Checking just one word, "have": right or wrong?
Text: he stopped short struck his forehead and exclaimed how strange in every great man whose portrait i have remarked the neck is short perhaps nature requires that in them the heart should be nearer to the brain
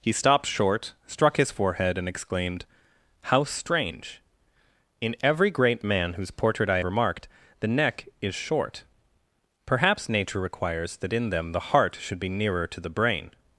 wrong